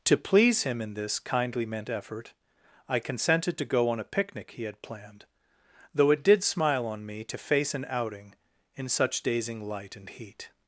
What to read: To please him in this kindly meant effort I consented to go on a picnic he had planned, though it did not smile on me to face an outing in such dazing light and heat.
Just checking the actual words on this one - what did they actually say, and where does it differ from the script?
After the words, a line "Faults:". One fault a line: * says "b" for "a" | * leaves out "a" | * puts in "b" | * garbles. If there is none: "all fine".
To please him in this kindly meant effort I consented to go on a picnic he had planned, though it did smile on me to face an outing in such dazing light and heat.
Faults:
* leaves out "not"